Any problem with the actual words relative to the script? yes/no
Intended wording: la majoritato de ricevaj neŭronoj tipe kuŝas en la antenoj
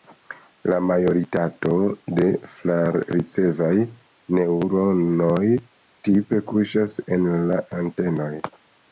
yes